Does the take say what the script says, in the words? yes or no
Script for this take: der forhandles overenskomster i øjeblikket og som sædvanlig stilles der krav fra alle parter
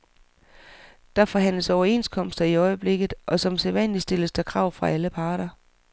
yes